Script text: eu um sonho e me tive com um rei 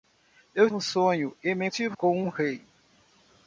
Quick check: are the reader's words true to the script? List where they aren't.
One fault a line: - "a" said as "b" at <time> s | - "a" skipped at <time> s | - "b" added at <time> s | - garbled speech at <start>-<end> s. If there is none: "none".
none